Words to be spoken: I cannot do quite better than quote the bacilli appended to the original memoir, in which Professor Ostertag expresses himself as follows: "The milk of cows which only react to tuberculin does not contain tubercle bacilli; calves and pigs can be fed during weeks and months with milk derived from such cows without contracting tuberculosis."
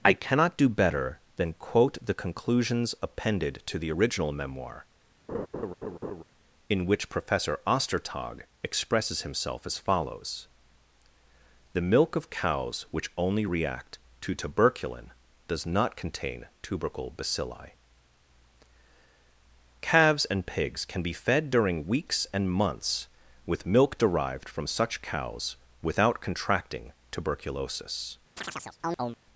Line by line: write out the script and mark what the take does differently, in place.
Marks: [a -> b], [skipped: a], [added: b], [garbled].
I cannot do [skipped: quite] better than quote the [bacilli -> conclusions] appended to the original memoir, in which Professor Ostertag expresses himself as follows: "The milk of cows which only react to tuberculin does not contain tubercle bacilli; calves and pigs can be fed during weeks and months with milk derived from such cows without contracting tuberculosis."